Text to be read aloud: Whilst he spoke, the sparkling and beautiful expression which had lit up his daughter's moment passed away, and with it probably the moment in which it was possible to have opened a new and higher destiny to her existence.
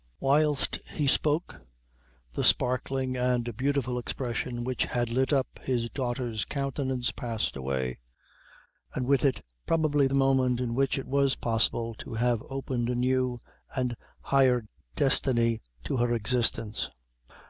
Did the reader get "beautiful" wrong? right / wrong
right